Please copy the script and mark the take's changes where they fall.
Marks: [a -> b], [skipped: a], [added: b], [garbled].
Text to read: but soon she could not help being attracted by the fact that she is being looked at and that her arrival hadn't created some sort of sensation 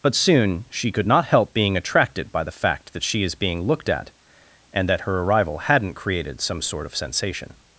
but soon she could not help being attracted by the fact that she is being looked at and that her arrival hadn't created some sort of sensation